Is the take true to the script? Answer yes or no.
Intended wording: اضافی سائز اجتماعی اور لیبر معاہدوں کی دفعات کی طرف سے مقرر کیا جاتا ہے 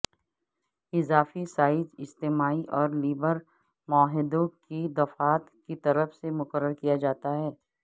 yes